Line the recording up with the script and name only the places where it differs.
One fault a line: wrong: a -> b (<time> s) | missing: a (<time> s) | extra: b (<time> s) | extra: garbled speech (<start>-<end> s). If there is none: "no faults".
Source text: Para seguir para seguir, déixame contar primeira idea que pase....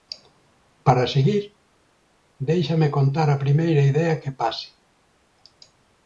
missing: para seguir (1.4 s)
extra: a (3.3 s)